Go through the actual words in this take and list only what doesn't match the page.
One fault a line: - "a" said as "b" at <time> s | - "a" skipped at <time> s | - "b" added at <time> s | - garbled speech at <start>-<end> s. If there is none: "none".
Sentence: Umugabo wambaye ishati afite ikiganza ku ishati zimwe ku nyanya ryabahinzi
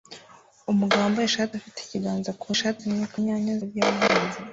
none